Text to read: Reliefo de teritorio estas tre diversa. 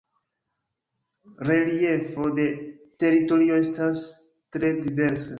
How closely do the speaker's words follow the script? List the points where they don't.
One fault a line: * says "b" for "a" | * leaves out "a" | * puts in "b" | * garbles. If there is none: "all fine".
all fine